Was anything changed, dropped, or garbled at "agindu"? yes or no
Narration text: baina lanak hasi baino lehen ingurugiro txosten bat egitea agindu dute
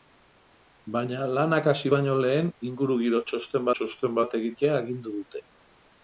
no